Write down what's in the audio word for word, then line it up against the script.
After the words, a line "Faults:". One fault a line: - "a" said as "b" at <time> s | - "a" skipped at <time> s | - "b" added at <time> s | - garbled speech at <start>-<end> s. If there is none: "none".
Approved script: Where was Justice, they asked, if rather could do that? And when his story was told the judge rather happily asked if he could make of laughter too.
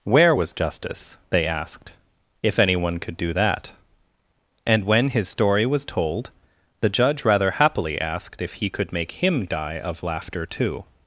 Where was Justice, they asked, if anyone could do that? And when his story was told the judge rather happily asked if he could make him die of laughter too.
Faults:
- "rather" said as "anyone" at 2.6 s
- "him die" added at 9.1 s